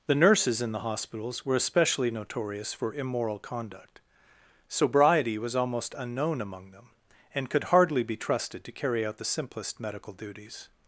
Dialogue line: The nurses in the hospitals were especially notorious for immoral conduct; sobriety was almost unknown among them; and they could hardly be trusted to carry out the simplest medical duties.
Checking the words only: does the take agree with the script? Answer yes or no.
no